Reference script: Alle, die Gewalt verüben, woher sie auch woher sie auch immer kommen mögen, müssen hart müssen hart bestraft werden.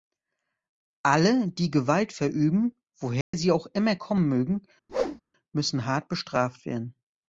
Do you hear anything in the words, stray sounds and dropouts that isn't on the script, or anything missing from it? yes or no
yes